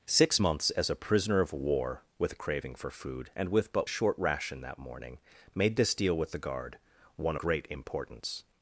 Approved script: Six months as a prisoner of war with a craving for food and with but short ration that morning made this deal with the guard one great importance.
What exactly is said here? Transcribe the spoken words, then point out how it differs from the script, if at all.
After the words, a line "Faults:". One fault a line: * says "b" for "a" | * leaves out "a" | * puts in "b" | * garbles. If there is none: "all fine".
Six months as a prisoner of war with a craving for food and with but short ration that morning made this deal with the guard one great importance.
Faults:
all fine